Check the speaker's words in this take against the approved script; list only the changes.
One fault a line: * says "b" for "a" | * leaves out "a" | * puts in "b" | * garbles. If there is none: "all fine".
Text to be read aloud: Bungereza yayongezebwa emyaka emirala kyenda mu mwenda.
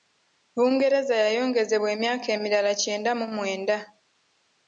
all fine